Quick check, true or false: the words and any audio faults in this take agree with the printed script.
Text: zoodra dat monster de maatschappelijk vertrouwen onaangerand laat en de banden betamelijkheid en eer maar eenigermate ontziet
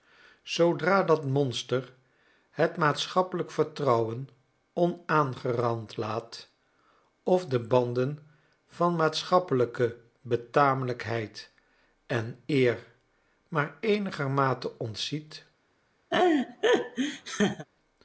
false